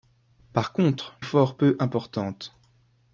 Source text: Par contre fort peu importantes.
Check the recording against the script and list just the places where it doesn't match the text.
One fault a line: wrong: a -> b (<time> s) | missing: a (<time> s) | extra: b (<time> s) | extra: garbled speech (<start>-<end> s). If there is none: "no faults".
no faults